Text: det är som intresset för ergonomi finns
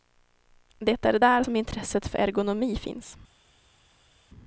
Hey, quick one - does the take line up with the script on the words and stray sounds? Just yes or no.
no